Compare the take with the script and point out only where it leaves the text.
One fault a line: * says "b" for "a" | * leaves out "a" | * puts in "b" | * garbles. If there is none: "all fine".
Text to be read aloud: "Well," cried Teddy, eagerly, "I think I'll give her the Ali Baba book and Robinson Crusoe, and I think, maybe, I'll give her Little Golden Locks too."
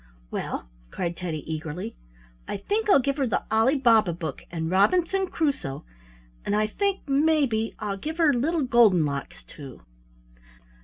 all fine